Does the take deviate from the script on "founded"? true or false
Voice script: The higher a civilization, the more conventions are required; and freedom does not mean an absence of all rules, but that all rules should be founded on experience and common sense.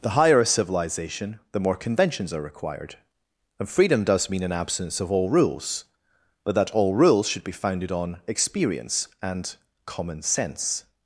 false